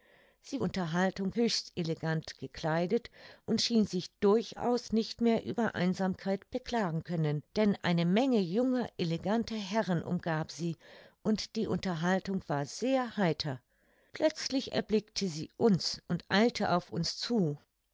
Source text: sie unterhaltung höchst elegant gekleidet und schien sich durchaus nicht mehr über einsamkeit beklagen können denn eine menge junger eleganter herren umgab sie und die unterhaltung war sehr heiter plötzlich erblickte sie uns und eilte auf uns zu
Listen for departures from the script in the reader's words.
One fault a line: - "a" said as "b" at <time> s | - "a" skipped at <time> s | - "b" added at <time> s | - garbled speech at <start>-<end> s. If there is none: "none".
none